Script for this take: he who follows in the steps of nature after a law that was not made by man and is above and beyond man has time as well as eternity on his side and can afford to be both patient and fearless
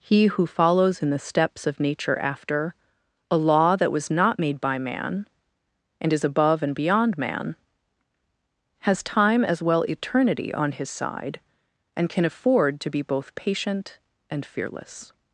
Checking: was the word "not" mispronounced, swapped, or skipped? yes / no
no